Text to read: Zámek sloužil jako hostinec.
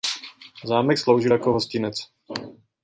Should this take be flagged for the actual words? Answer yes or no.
no